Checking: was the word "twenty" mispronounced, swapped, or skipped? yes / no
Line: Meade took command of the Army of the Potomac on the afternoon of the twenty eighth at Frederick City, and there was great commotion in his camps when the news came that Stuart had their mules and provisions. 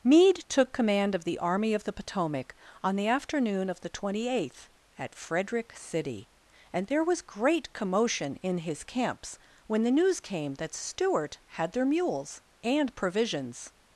no